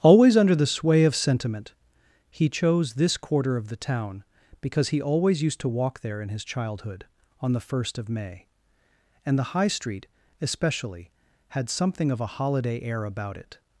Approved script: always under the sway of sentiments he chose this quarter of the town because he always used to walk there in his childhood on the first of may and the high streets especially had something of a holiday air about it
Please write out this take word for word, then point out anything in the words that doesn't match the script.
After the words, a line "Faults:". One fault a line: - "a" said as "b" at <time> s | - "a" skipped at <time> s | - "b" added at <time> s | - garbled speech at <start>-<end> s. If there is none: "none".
always under the sway of sentiment he chose this quarter of the town because he always used to walk there in his childhood on the first of may and the high street especially had something of a holiday air about it
Faults:
- "sentiments" said as "sentiment" at 1.1 s
- "streets" said as "street" at 9.7 s